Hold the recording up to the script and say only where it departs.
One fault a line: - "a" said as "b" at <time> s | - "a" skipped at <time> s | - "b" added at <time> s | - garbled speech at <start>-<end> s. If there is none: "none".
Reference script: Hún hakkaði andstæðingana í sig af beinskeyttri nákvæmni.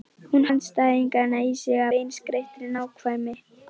- "hakkaði" skipped at 0.5 s
- "af" skipped at 1.8 s